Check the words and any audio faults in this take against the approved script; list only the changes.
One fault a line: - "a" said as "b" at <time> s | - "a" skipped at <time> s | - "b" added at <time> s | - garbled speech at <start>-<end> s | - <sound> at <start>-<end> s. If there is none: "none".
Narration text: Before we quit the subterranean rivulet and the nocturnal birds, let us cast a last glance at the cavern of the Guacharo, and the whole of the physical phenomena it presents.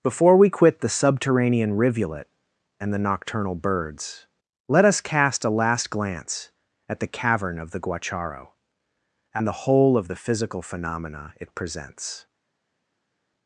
none